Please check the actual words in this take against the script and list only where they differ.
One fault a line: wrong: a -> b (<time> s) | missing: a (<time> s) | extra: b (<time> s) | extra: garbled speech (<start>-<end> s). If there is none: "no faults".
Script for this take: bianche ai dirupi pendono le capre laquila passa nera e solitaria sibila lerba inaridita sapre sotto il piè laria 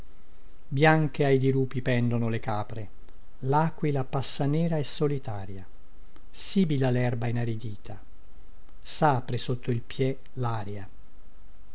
no faults